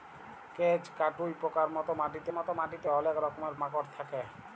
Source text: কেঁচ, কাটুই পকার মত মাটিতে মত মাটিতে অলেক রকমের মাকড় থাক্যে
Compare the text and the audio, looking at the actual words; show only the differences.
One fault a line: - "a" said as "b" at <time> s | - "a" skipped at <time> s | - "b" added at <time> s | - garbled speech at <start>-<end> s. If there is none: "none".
none